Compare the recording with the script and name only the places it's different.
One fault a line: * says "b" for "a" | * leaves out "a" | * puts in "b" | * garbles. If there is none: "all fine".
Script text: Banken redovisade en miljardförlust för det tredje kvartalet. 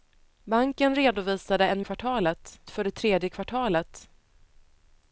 * says "kvartalet" for "miljardförlust"